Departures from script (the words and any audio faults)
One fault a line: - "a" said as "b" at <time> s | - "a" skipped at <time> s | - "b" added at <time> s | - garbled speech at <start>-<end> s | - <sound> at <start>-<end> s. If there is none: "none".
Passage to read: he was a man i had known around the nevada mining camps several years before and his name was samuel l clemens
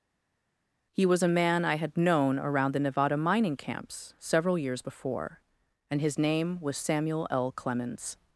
none